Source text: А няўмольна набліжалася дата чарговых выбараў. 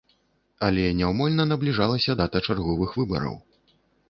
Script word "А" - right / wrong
wrong